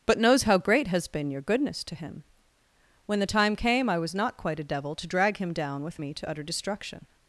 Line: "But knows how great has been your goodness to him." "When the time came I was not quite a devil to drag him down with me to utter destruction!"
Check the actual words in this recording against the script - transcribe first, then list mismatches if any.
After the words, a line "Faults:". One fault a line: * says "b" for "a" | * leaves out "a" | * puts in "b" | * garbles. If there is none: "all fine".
"But knows how great has been your goodness to him." "When the time came I was not quite a devil to drag him down with me to utter destruction!"
Faults:
all fine